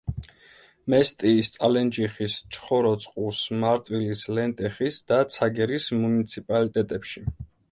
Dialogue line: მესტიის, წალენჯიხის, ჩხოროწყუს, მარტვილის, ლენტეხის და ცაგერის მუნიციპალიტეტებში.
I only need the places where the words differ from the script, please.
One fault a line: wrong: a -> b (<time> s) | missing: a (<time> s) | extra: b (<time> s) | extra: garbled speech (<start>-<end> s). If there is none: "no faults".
no faults